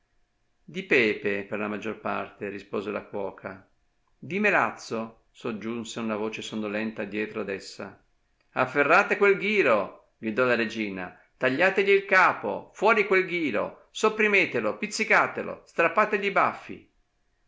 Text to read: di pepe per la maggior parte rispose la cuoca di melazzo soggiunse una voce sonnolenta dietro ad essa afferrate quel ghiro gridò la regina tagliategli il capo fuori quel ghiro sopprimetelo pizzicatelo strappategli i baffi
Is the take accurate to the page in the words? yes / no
yes